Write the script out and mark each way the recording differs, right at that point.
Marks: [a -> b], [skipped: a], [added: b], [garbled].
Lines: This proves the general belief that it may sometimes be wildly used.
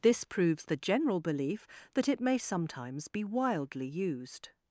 This proves the general belief that it may sometimes be wildly used.